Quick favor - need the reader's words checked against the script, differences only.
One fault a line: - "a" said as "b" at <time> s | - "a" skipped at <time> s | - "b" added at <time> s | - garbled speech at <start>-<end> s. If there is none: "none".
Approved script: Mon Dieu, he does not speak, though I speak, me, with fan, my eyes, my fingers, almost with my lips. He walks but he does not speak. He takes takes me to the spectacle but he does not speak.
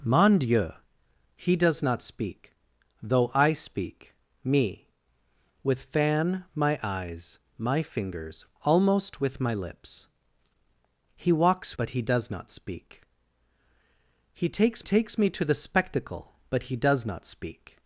none